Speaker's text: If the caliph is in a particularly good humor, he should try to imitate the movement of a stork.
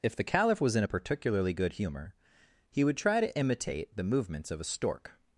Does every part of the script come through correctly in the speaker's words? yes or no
no